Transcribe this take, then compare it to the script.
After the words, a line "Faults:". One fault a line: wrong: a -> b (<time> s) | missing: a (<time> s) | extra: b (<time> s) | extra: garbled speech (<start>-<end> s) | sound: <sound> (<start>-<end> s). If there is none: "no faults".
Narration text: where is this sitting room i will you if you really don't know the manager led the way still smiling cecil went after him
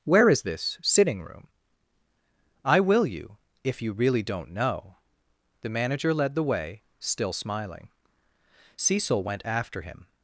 where is this sitting room i will you if you really don't know the manager led the way still smiling cecil went after him
Faults:
no faults